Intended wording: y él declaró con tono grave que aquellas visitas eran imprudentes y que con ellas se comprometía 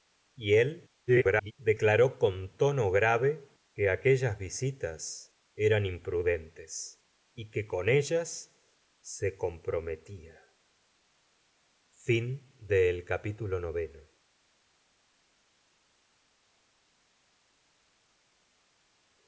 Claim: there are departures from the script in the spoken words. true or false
true